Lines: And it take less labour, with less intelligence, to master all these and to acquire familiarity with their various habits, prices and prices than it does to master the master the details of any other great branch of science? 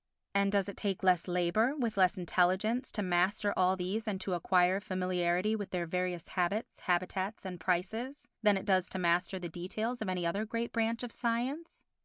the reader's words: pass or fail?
fail